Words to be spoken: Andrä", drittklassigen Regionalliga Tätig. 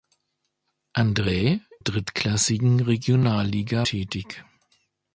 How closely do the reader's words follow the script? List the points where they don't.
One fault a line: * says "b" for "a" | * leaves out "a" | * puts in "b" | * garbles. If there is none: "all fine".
all fine